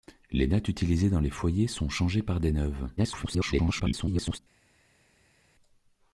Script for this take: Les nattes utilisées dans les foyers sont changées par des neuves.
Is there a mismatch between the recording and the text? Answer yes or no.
yes